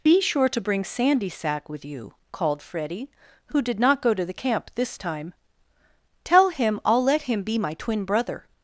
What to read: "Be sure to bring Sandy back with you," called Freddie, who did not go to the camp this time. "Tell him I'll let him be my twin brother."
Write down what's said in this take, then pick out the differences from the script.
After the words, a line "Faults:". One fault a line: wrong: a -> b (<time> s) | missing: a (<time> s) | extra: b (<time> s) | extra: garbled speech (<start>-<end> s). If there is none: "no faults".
"Be sure to bring Sandy sack with you," called Freddie, who did not go to the camp this time. "Tell him I'll let him be my twin brother."
Faults:
wrong: back -> sack (1.3 s)